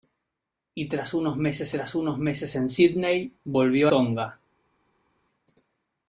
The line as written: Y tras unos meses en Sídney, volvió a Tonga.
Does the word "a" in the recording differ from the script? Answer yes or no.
yes